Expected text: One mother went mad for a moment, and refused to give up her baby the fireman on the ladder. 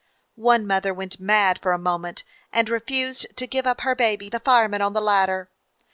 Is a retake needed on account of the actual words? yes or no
no